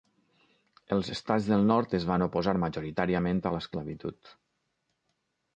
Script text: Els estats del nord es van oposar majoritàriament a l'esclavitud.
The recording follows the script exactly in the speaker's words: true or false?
true